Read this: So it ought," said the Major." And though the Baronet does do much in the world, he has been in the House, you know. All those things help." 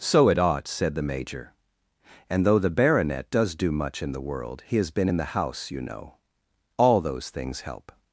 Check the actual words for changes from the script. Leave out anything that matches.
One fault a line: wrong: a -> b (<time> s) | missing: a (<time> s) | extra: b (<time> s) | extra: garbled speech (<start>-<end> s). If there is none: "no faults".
no faults